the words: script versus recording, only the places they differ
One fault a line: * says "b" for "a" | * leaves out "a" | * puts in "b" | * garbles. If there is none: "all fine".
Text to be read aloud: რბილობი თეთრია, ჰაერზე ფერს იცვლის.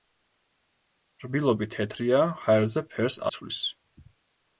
all fine